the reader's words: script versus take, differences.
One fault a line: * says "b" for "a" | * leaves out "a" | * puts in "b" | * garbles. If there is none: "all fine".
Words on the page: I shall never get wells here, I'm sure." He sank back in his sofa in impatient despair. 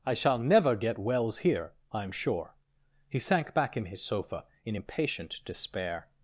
all fine